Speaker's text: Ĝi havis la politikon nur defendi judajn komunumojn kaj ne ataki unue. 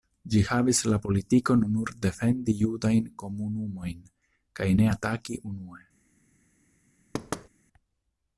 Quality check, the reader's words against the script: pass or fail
pass